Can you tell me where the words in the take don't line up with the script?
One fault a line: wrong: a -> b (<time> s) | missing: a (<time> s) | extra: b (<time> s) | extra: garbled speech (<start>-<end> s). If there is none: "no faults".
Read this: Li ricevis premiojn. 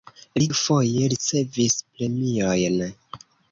extra: dufoje (0.5 s)